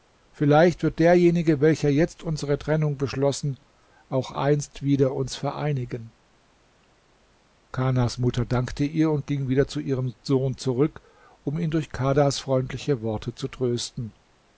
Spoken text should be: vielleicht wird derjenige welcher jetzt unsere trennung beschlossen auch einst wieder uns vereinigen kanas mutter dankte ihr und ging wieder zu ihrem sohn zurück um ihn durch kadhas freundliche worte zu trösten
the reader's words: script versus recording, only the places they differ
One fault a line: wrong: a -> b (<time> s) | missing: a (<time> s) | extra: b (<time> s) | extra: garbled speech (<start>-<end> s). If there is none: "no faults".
no faults